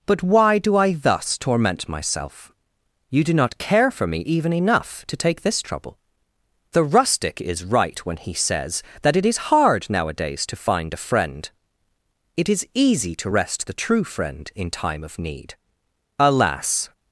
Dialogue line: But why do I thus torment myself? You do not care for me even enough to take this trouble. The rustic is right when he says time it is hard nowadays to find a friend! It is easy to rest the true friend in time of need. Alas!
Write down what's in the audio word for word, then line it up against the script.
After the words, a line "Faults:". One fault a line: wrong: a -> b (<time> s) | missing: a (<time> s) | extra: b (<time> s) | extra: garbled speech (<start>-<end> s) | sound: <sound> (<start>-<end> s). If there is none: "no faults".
But why do I thus torment myself? You do not care for me even enough to take this trouble. The rustic is right when he says that it is hard nowadays to find a friend! It is easy to rest the true friend in time of need. Alas!
Faults:
wrong: time -> that (9.0 s)